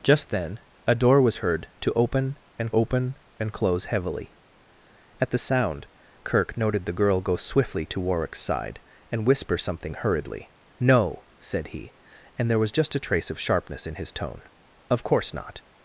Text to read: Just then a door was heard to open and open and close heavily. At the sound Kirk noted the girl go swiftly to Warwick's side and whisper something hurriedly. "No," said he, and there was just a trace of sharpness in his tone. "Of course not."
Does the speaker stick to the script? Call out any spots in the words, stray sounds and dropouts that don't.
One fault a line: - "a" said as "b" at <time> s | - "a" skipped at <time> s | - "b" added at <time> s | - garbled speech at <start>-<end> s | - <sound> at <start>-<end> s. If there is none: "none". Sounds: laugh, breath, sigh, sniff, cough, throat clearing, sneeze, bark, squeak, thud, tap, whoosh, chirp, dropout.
none